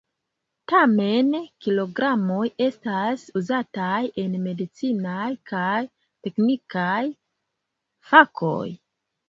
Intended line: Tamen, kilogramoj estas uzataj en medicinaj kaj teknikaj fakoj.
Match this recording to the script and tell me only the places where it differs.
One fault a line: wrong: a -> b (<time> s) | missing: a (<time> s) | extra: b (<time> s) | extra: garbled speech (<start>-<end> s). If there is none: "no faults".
no faults